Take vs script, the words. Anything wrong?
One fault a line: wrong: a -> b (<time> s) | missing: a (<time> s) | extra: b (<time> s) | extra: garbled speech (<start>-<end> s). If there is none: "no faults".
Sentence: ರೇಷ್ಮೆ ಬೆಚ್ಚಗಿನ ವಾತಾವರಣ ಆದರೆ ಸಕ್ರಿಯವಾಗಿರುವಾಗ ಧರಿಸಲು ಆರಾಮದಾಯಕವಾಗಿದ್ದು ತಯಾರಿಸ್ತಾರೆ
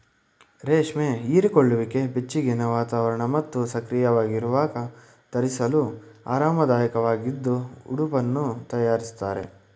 extra: ಹೀರಿಕೊಳ್ಳುವಿಕೆ (1.2 s)
wrong: ಆದರೆ -> ಮತ್ತು (3.4 s)
extra: ಉಡುಪನ್ನು (7.9 s)